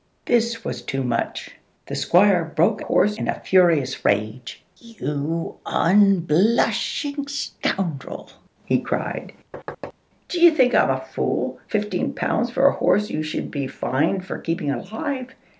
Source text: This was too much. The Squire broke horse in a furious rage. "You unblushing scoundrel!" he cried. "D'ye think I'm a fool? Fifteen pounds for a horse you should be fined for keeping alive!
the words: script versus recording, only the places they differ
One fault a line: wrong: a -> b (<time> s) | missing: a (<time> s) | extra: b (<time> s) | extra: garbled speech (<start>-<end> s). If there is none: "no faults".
no faults